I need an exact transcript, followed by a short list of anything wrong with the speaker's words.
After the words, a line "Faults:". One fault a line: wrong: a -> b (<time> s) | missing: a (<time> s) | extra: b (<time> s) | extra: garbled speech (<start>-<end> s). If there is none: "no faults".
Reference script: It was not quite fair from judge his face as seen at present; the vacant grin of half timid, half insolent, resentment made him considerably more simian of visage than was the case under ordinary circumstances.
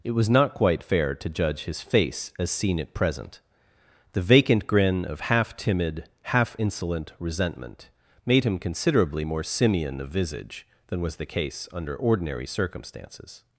It was not quite fair to judge his face as seen at present; the vacant grin of half timid, half insolent, resentment made him considerably more simian of visage than was the case under ordinary circumstances.
Faults:
wrong: from -> to (1.1 s)